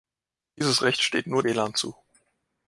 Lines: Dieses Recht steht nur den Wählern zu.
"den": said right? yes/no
no